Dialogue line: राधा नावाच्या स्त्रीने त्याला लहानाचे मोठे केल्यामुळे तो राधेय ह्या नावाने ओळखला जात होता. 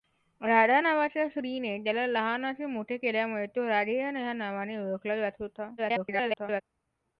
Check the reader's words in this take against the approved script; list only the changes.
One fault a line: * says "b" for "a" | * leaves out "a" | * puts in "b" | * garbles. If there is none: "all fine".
* garbles